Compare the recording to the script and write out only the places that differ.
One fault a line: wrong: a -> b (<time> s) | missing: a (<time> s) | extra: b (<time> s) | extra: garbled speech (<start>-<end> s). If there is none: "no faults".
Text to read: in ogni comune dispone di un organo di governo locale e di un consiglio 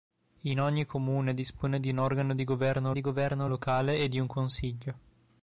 extra: di governo (2.9 s)